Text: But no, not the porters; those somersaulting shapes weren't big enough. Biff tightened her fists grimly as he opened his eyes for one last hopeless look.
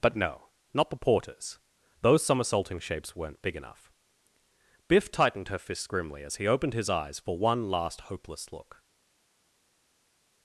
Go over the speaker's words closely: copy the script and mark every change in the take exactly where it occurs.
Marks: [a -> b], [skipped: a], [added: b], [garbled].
But no, not the porters; those somersaulting shapes weren't big enough. Biff tightened her fists grimly as he opened his eyes for one last hopeless look.